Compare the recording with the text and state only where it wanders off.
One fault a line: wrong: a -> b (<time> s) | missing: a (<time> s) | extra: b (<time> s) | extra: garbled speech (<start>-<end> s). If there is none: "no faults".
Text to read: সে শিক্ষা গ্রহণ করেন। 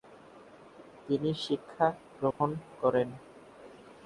wrong: সে -> তিনি (1.1 s)